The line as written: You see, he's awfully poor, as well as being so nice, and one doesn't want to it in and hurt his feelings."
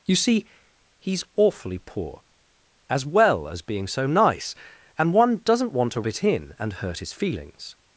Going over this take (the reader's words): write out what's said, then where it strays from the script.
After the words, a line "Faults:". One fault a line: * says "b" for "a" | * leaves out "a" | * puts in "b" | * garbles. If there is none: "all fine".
You see, he's awfully poor, as well as being so nice, and one doesn't want to it in and hurt his feelings."
Faults:
all fine